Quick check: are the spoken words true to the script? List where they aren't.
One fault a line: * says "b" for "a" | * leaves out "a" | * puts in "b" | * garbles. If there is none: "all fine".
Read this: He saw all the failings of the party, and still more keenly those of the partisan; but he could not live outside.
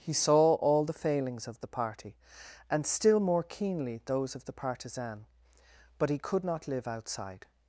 all fine